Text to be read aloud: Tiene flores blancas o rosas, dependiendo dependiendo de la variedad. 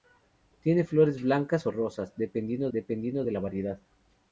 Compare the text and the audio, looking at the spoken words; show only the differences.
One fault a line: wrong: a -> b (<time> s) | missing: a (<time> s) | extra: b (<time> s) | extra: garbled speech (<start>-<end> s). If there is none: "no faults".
no faults